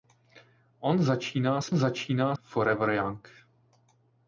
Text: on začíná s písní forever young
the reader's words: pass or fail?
fail